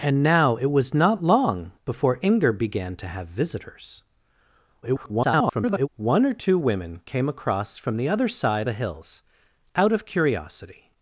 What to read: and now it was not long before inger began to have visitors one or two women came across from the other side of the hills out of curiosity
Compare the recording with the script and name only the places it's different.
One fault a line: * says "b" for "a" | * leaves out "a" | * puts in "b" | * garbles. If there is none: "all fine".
* garbles
* leaves out "of"